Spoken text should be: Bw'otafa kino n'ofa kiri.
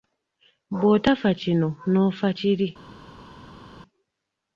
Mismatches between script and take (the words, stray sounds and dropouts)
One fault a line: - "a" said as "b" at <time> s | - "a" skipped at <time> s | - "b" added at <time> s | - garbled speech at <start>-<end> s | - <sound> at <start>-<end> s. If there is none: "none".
none